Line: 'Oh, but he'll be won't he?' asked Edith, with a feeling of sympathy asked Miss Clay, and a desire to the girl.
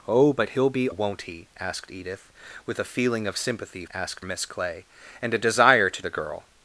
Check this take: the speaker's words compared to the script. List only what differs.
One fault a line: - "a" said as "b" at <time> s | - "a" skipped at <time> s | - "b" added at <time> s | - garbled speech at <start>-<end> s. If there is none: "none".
none